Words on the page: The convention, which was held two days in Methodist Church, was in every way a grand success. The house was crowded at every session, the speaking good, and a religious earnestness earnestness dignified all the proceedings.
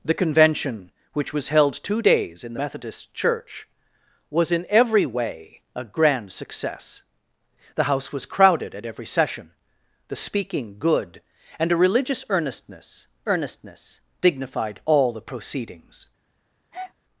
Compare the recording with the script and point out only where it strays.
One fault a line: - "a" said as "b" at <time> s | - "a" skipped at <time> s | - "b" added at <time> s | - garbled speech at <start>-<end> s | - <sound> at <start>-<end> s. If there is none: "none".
- breath at 16.7-16.9 s